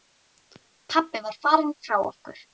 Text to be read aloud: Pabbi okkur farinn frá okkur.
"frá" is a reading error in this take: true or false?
false